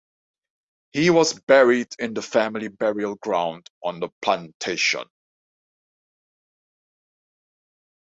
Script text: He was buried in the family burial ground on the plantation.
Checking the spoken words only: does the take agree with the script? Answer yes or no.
yes